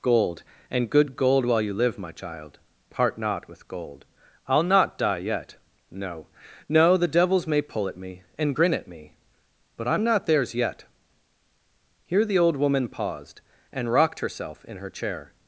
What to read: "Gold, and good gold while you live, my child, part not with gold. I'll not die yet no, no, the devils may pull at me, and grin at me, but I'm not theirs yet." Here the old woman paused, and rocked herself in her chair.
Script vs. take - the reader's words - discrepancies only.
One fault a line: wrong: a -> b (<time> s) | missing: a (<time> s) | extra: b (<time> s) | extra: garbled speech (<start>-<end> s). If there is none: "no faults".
no faults